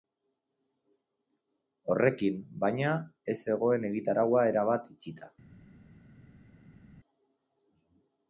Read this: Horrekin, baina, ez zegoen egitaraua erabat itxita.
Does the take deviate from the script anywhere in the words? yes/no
no